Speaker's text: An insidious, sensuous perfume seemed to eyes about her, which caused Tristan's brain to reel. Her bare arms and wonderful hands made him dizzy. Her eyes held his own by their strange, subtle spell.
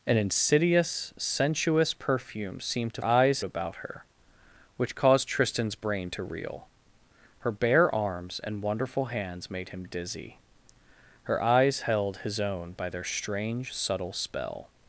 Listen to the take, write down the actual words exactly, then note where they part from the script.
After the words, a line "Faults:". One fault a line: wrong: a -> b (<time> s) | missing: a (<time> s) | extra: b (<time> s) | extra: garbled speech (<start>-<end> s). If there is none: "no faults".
An insidious, sensuous perfume seemed to eyes about her, which caused Tristan's brain to reel. Her bare arms and wonderful hands made him dizzy. Her eyes held his own by their strange, subtle spell.
Faults:
no faults